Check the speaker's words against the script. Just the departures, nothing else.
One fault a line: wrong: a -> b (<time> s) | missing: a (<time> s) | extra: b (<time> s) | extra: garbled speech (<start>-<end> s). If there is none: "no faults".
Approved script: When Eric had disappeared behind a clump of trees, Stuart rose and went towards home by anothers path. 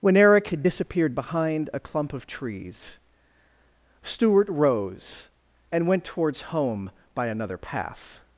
wrong: anothers -> another (7.3 s)